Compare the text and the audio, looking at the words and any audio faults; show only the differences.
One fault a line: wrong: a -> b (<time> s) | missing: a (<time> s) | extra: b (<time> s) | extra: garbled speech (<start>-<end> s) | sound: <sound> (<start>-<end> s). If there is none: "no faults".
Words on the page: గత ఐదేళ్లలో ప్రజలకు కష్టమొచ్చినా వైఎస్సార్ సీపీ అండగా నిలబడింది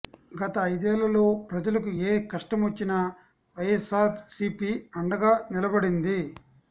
extra: ఏ (2.0 s)